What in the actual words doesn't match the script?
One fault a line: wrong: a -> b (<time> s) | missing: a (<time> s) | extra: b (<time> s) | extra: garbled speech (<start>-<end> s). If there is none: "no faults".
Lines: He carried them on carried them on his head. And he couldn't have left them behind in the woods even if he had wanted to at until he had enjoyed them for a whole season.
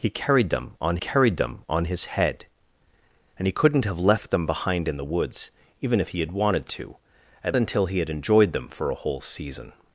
no faults